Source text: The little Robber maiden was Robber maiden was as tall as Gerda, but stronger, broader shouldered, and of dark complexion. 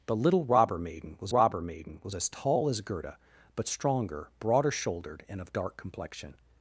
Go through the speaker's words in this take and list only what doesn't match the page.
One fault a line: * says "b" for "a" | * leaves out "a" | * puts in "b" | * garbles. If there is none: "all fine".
all fine